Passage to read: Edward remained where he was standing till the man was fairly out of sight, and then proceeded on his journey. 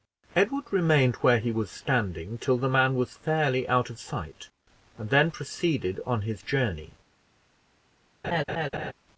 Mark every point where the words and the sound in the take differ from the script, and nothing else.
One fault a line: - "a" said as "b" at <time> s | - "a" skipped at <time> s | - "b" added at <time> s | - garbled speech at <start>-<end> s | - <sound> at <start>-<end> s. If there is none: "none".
- laugh at 8.2-8.9 s